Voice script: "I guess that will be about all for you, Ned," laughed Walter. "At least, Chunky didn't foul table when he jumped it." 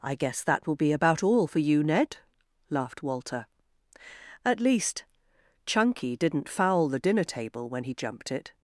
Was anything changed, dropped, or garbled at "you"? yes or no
no